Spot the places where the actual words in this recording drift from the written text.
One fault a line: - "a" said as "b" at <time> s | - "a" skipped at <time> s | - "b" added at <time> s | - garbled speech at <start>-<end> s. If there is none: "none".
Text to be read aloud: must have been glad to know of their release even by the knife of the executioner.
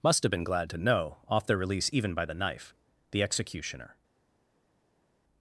- "of" said as "off" at 1.3 s
- "of" skipped at 2.7 s